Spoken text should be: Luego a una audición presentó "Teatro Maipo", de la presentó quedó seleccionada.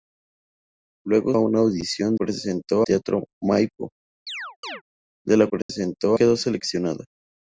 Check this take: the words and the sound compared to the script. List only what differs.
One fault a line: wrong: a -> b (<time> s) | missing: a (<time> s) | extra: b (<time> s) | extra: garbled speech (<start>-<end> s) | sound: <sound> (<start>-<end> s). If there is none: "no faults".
sound: chirp (4.3-4.8 s)
sound: dropout (5.6-5.7 s)